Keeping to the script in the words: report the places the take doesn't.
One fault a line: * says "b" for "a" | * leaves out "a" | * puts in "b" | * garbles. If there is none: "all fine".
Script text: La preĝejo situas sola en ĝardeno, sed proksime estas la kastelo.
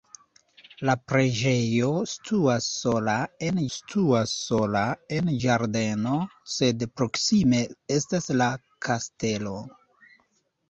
* puts in "situas sola en"